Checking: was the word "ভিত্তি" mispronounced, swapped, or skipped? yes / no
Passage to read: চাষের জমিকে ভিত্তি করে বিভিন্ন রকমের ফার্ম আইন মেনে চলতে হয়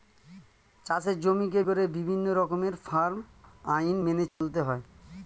yes